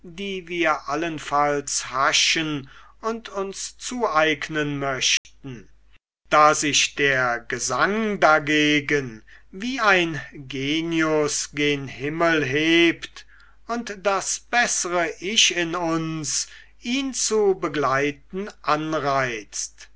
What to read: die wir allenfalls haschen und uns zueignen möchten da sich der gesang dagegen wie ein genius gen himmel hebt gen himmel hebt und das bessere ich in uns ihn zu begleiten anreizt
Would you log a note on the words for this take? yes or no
yes